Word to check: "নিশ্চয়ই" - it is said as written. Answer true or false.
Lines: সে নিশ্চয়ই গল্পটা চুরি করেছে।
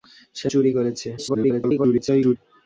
false